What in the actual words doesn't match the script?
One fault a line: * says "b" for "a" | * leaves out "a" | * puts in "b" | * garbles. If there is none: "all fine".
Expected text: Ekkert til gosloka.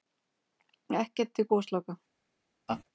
all fine